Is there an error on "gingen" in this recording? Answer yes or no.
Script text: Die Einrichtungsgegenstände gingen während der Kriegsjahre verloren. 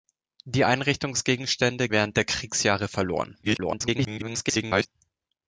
yes